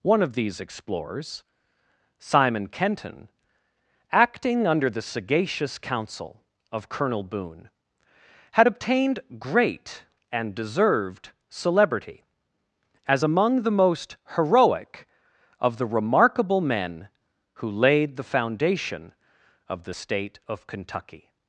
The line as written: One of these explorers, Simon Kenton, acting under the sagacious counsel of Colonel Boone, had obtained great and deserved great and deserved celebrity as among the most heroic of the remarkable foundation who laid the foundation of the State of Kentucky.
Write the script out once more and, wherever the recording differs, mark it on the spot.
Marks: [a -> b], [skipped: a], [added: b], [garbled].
One of these explorers, Simon Kenton, acting under the sagacious counsel of Colonel Boone, had obtained great and deserved [skipped: great and deserved] celebrity as among the most heroic of the remarkable [foundation -> men] who laid the foundation of the State of Kentucky.